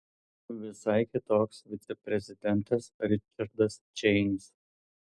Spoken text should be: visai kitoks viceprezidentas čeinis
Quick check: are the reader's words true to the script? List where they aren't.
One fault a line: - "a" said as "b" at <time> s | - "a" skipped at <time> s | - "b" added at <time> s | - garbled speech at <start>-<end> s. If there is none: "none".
- "ričardas" added at 3.1 s